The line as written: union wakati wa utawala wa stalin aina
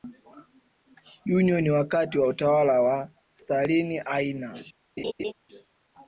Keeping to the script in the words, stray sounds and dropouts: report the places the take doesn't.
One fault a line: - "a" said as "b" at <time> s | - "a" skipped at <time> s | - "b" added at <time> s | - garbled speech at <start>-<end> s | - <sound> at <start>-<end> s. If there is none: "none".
- laugh at 5.0-5.3 s